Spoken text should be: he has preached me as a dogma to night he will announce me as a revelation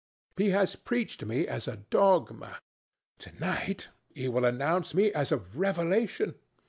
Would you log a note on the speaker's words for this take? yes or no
no